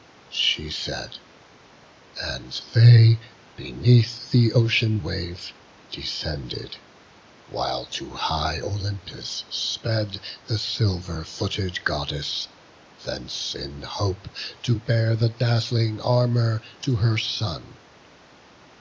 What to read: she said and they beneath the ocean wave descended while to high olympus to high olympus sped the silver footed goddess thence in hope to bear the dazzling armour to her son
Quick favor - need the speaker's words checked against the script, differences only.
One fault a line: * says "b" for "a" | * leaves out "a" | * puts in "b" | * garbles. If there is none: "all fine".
* leaves out "to high olympus"